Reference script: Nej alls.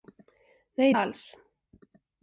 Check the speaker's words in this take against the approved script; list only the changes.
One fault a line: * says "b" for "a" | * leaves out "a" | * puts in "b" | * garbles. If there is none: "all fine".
all fine